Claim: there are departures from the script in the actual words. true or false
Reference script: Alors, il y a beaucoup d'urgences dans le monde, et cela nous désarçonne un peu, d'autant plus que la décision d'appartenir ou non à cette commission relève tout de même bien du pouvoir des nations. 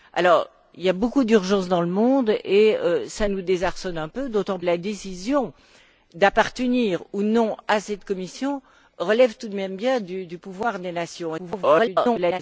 true